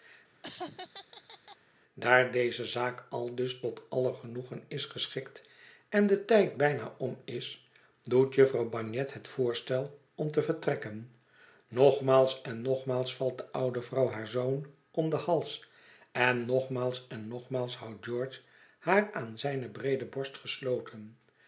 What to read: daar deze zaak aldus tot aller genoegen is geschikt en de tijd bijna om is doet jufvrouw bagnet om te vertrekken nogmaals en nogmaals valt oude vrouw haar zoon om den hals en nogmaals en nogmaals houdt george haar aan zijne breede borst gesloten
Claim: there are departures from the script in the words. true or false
true